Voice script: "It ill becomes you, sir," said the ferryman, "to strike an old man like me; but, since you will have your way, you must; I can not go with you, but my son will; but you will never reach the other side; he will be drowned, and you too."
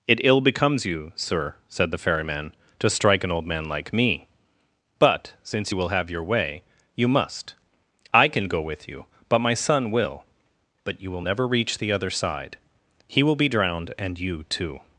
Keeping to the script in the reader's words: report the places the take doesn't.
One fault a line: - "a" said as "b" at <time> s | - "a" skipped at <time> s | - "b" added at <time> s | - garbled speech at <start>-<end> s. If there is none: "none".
- "not" skipped at 8.5 s